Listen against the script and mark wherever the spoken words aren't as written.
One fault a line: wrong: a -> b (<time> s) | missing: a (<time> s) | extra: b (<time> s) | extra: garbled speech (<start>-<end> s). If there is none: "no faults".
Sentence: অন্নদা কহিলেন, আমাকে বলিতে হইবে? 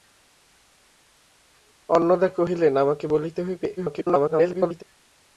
extra: garbled speech (3.8-4.8 s)